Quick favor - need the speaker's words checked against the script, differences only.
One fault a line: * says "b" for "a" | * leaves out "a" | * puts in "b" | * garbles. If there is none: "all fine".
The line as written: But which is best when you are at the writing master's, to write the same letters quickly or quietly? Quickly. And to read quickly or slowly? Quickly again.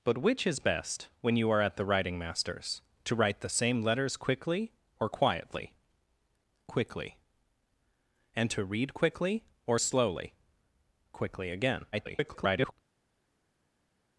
* garbles